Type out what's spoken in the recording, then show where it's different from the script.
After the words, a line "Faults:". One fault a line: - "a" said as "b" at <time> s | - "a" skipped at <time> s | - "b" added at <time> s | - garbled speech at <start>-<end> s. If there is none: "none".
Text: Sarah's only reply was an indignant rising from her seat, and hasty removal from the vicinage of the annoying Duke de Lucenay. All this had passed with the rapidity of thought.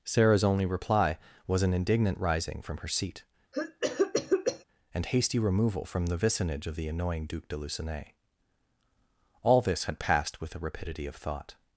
Sarah's only reply was an indignant rising from her seat, and hasty removal from the vicinage of the annoying Duke de Lucenay. All this had passed with the rapidity of thought.
Faults:
none